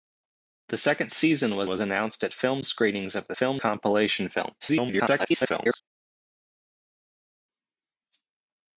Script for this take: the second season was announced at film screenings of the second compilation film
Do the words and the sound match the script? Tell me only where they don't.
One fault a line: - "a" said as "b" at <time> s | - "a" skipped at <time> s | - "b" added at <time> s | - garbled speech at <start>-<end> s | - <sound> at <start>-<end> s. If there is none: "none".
- "was" added at 1.7 s
- "second" said as "film" at 3.3 s
- garbled speech at 4.6-5.8 s